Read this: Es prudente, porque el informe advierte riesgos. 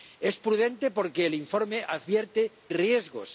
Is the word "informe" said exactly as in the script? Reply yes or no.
yes